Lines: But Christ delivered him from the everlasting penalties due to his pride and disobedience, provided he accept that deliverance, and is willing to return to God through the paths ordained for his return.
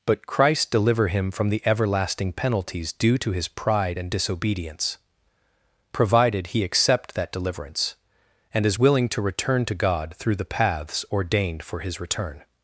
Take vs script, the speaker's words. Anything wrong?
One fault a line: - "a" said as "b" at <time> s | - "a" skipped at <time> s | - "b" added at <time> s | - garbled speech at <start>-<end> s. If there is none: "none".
- "delivered" said as "deliver" at 0.7 s